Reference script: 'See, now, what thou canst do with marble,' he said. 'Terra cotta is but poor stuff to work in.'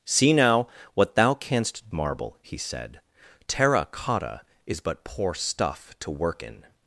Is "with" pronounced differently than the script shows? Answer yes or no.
yes